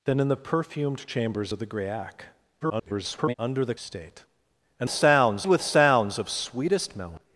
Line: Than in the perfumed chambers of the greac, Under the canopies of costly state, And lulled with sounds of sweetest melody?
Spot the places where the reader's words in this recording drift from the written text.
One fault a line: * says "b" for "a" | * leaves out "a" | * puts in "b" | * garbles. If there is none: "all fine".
* garbles
* leaves out "canopies of costly"
* says "sounds" for "lulled"